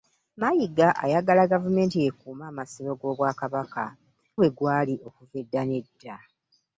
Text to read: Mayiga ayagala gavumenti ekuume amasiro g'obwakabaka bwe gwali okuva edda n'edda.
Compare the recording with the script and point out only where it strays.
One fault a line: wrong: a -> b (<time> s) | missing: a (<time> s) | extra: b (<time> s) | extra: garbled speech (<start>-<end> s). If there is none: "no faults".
no faults